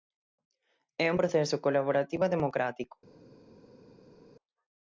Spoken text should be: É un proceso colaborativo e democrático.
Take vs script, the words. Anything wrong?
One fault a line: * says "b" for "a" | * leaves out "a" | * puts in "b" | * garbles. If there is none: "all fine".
all fine